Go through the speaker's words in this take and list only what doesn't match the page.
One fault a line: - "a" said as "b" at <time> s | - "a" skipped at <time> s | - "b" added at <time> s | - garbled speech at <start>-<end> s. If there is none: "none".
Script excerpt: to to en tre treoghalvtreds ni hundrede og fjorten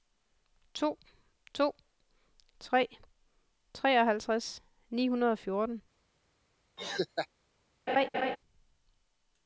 - "en" skipped at 1.7 s